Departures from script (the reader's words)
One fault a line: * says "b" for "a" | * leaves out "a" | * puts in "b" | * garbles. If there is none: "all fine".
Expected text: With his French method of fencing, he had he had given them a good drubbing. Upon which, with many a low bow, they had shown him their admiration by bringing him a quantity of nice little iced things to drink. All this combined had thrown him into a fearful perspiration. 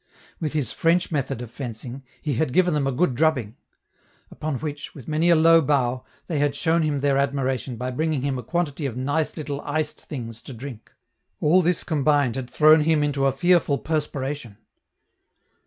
* leaves out "he had"